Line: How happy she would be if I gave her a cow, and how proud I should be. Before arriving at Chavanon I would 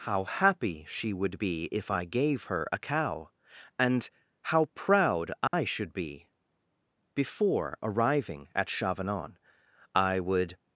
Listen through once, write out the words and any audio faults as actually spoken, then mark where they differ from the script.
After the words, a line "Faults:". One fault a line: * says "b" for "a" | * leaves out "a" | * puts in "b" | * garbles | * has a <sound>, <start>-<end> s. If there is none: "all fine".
How happy she would be if I gave her a cow, and how proud I should be. Before arriving at Chavanon I would
Faults:
* has a dropout, 5.5-5.5 s